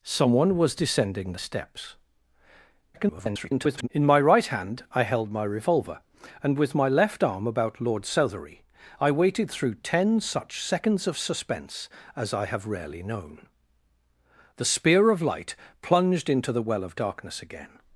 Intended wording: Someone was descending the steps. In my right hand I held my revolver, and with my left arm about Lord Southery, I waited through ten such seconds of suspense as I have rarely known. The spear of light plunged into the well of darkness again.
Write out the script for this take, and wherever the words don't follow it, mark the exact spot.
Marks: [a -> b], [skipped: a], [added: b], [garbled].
Someone was descending the steps. [garbled] In my right hand I held my revolver, and with my left arm about Lord Southery, I waited through ten such seconds of suspense as I have rarely known. The spear of light plunged into the well of darkness again.